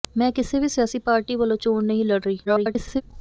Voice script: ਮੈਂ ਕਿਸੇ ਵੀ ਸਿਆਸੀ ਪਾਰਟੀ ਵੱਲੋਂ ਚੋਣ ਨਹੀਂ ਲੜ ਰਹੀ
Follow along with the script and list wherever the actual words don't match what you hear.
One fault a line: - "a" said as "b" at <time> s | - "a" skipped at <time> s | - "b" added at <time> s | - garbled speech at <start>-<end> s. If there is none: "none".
- garbled speech at 2.5-3.0 s